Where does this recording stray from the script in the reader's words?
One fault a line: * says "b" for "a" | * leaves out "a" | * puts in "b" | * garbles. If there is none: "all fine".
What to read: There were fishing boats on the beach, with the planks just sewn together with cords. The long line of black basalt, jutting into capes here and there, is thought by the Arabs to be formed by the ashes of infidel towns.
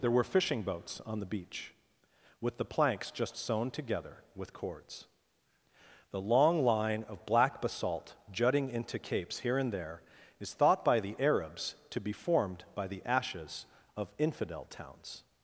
all fine